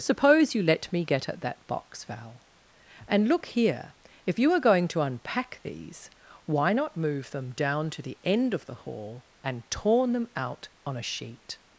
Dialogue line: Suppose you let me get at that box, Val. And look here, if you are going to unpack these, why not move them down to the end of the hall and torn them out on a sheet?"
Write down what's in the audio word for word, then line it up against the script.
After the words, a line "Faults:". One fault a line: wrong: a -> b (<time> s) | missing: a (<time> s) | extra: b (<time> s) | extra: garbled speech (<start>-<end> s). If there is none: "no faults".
Suppose you let me get at that box, Val. And look here, if you are going to unpack these, why not move them down to the end of the hall and torn them out on a sheet?"
Faults:
no faults